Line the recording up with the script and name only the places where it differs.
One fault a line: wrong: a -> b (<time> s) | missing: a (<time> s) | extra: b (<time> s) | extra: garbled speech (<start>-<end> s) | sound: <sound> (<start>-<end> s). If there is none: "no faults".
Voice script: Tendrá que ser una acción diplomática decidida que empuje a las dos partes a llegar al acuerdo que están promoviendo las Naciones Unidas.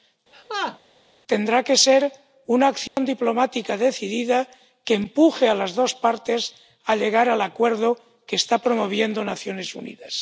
sound: laugh (0.3-0.8 s)
sound: dropout (2.9-3.0 s)